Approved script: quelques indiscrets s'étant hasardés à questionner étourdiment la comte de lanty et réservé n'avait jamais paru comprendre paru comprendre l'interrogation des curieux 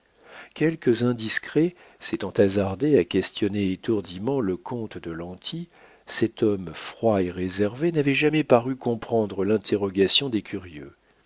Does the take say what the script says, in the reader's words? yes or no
no